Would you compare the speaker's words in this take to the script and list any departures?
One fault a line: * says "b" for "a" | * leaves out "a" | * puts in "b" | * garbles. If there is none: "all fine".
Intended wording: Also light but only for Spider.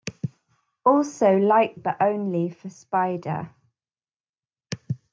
all fine